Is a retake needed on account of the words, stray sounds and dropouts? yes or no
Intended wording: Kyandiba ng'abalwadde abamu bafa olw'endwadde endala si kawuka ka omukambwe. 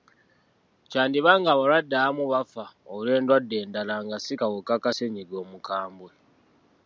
yes